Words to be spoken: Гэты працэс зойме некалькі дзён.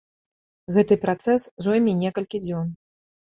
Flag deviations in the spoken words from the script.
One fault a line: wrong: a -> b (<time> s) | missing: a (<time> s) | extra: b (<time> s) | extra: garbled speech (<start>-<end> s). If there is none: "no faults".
no faults